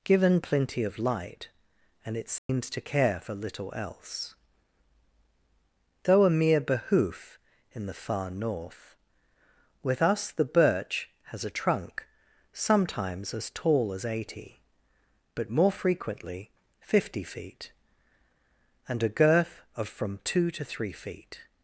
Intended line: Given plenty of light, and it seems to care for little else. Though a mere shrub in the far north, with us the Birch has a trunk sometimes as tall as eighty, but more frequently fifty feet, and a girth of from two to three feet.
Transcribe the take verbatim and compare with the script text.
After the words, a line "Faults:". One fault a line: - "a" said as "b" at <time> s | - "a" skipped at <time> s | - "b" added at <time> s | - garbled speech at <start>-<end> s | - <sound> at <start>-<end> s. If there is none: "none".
Given plenty of light, and it seems to care for little else. Though a mere behoof in the far north, with us the Birch has a trunk sometimes as tall as eighty, but more frequently fifty feet, and a girth of from two to three feet.
Faults:
- dropout at 2.4-2.5 s
- "shrub" said as "behoof" at 6.6 s